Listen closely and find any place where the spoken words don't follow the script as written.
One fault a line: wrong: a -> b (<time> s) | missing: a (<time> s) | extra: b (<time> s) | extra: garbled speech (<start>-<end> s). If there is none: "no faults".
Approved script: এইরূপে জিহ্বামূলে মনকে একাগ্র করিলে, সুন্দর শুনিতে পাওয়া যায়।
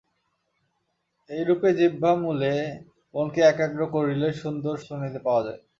no faults